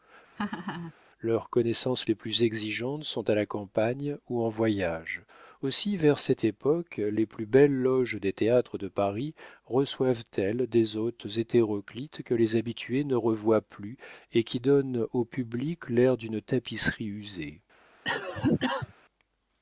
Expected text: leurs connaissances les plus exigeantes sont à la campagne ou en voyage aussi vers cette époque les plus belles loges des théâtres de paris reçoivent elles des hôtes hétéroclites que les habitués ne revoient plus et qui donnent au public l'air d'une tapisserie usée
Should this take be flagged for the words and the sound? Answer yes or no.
yes